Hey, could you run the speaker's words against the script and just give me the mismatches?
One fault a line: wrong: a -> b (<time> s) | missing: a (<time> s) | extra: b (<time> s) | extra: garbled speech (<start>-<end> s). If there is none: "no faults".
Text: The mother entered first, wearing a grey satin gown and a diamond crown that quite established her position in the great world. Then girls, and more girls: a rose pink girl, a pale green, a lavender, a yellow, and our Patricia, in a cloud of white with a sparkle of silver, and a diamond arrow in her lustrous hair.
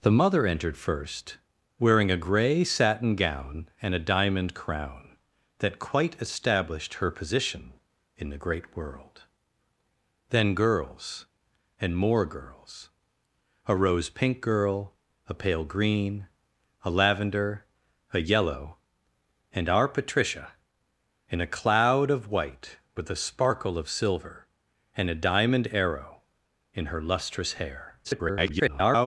extra: garbled speech (28.0-29.1 s)